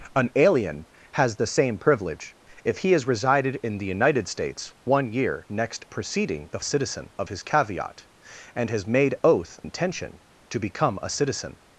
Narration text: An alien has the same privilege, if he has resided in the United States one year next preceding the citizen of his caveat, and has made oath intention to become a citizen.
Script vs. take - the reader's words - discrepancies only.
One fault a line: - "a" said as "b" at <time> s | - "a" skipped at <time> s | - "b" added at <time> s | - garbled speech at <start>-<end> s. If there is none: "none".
none